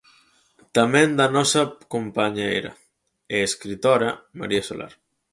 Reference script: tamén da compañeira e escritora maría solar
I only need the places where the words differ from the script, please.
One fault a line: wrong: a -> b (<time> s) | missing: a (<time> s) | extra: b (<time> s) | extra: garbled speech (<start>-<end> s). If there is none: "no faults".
extra: nosa (1.4 s)